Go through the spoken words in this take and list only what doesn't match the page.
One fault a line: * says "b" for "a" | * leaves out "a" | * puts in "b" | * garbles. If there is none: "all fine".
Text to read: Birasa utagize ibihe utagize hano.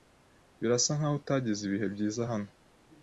* puts in "nkaho"
* says "byiza" for "utagize"